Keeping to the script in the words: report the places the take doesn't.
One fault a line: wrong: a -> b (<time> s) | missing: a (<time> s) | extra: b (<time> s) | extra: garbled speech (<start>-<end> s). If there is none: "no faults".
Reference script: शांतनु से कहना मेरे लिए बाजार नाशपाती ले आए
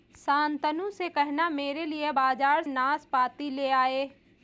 no faults